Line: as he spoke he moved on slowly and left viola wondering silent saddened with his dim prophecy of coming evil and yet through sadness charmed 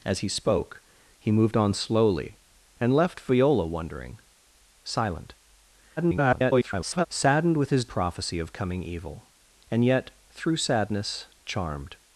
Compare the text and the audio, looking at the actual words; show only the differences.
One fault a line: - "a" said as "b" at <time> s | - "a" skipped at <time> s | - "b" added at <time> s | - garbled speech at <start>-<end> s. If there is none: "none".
- garbled speech at 6.0-7.1 s
- "dim" skipped at 7.9 s